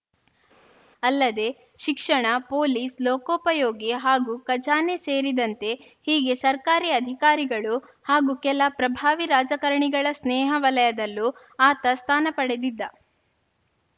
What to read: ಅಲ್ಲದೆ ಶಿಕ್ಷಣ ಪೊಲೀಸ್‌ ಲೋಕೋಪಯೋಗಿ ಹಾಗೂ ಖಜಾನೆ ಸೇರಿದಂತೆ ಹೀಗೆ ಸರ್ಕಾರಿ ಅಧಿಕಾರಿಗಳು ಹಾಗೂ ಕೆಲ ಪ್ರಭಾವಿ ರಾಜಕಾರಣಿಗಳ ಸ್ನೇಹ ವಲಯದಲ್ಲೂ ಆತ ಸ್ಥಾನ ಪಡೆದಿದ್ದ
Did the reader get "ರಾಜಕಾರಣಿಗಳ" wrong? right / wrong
right